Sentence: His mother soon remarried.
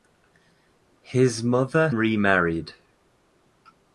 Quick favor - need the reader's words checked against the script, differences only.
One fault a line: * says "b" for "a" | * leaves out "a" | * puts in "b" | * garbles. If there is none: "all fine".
* leaves out "soon"